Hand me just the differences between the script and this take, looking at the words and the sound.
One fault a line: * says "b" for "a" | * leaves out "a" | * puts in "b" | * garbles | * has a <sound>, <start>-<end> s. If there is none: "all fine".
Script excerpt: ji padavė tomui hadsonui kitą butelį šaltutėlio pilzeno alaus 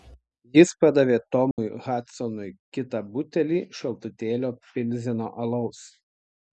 * says "jis" for "ji"
* has a dropout, 1.5-1.6 s